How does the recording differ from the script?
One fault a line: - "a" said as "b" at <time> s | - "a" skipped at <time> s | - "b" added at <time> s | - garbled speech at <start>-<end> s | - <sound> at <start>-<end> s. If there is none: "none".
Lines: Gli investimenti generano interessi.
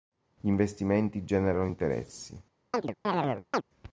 - chirp at 2.7-3.6 s